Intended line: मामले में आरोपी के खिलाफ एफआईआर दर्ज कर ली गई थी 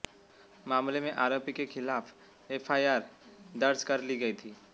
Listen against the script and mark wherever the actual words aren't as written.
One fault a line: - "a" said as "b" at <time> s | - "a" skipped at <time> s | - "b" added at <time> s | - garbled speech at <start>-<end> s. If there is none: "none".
none